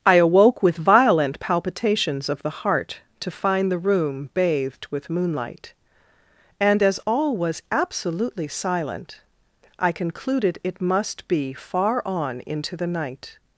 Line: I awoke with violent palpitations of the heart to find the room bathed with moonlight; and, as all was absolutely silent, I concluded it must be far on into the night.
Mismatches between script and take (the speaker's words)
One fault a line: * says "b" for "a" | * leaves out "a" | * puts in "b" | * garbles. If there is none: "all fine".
all fine